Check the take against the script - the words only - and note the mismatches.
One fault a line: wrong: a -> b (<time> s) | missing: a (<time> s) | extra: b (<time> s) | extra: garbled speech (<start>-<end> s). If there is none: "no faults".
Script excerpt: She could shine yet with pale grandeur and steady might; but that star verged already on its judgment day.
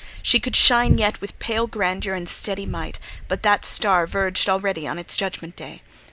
no faults